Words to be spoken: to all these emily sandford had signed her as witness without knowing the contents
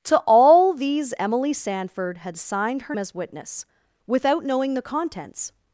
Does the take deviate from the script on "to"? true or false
false